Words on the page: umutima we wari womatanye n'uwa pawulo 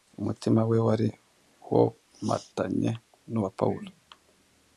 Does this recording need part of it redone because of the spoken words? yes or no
no